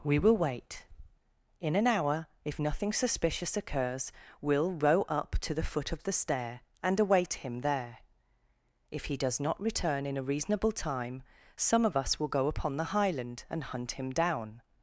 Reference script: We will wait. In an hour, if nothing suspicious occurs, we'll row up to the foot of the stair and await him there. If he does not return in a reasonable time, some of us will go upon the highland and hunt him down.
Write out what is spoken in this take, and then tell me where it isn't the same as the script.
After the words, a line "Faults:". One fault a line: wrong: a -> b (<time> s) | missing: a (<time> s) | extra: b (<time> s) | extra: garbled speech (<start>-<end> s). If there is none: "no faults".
We will wait. In an hour, if nothing suspicious occurs, we'll row up to the foot of the stair and await him there. If he does not return in a reasonable time, some of us will go upon the highland and hunt him down.
Faults:
no faults